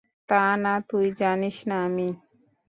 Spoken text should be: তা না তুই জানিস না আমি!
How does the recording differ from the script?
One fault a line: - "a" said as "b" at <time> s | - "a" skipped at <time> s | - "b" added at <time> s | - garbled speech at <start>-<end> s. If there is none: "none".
none